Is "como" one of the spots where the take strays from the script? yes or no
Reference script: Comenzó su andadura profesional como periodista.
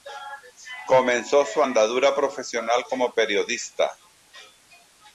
no